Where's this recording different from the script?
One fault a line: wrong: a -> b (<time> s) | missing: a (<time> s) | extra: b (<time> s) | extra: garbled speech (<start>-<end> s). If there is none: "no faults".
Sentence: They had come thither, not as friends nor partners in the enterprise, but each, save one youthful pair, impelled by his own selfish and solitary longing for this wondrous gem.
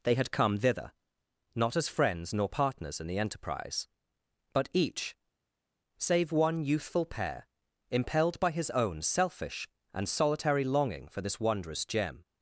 no faults